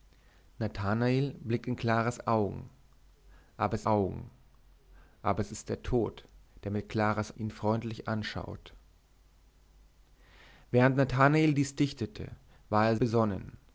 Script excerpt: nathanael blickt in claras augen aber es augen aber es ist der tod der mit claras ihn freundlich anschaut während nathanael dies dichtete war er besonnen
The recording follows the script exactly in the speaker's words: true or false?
true